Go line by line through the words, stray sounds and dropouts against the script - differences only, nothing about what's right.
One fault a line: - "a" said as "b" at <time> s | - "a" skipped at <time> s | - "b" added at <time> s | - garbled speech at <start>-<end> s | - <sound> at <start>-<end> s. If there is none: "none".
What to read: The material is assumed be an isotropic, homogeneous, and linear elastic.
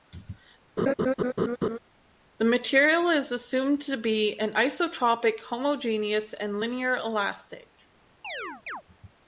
- laugh at 0.8-1.8 s
- "to" added at 3.8 s
- chirp at 8.2-8.8 s